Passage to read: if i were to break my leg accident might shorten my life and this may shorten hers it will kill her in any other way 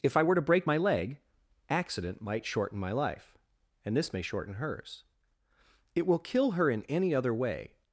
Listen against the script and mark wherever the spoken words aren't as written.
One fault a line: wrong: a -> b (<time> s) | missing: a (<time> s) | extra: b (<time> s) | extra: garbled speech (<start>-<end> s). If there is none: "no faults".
no faults